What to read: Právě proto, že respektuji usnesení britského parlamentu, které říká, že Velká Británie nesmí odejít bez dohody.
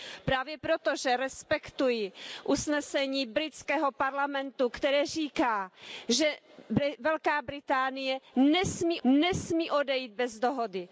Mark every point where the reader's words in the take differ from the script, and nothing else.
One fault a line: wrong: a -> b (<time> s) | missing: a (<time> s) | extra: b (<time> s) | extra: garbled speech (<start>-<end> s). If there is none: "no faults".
extra: nesmí (9.0 s)